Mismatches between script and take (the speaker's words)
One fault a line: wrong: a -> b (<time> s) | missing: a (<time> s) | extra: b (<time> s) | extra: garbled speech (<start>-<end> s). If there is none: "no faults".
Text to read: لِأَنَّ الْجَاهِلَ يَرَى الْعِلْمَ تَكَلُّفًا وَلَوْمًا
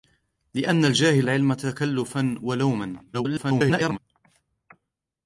missing: يَرَى (1.3 s)
extra: garbled speech (3.1-4.0 s)